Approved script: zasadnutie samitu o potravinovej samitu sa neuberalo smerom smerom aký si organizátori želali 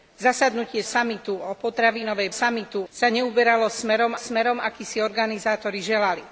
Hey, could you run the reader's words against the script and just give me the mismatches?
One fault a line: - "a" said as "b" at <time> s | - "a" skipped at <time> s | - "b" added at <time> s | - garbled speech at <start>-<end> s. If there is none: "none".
none